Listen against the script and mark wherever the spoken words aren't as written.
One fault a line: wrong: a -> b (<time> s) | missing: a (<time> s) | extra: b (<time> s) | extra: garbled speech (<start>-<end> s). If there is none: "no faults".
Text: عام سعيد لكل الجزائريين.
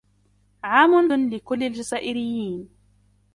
missing: سعيد (1.1 s)